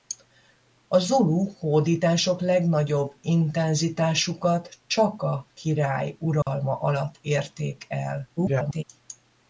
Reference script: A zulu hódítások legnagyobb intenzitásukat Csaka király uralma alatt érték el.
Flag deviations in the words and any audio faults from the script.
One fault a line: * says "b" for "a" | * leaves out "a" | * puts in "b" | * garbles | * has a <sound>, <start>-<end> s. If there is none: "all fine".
* has a dropout, 6.4-6.5 s
* garbles